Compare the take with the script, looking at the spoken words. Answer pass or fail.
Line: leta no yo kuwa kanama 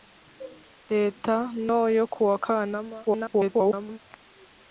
fail